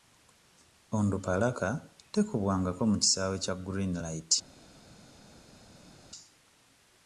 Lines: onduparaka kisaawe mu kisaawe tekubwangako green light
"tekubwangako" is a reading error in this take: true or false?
true